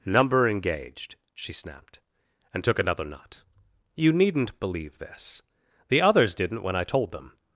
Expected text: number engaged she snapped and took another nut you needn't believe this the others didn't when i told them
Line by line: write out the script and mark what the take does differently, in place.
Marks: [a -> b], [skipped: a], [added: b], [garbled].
number engaged she snapped and took another nut you needn't believe this the others didn't when i told them